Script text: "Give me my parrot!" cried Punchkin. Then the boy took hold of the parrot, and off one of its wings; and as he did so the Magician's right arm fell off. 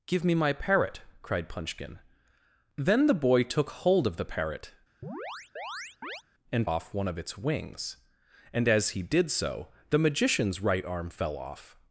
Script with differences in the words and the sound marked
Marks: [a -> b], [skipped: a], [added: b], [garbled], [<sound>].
"Give me my parrot!" cried Punchkin. Then the boy took hold of the parrot, [chirp] and off one of its wings; and as he did so the Magician's right arm fell off.